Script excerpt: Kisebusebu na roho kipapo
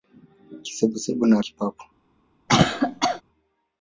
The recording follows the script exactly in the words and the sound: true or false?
false